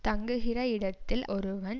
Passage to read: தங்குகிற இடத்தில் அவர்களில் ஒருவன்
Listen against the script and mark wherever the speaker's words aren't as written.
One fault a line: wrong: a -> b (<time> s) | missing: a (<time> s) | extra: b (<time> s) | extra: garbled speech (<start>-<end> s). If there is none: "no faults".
missing: அவர்களில் (1.2 s)